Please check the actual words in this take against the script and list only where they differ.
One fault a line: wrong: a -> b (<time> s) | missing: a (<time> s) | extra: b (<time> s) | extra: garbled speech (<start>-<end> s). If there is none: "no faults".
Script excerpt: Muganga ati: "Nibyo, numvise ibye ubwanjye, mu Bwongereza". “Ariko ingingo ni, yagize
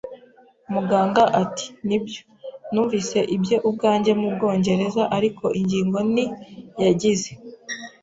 no faults